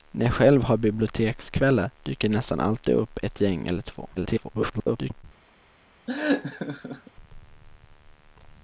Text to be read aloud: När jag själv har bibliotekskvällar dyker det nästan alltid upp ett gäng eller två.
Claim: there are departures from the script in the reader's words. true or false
true